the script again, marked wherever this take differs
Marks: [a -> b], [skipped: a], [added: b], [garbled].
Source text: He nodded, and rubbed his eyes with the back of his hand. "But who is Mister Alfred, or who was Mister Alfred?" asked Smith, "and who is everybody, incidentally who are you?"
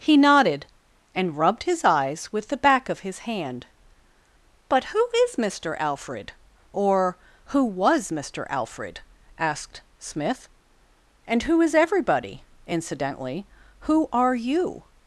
He nodded, and rubbed his eyes with the back of his hand. "But who is Mister Alfred, or who was Mister Alfred?" asked Smith, "and who is everybody, incidentally who are you?"